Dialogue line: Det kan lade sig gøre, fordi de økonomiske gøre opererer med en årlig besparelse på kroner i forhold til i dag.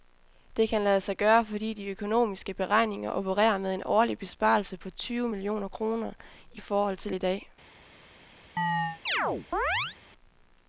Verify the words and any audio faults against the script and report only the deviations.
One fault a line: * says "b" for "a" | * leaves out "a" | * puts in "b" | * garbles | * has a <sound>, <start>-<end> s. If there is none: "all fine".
* says "beregninger" for "gøre"
* puts in "tyve millioner"
* has a chirp, 8.6-10.0 s